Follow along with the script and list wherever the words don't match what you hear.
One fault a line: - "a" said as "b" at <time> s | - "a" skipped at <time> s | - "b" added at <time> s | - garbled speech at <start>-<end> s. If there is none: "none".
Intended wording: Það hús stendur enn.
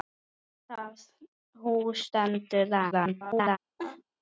- garbled speech at 2.9-3.6 s